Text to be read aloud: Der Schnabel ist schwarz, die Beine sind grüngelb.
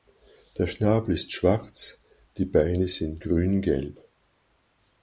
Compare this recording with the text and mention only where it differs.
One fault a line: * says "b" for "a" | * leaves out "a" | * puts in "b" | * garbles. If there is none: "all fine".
all fine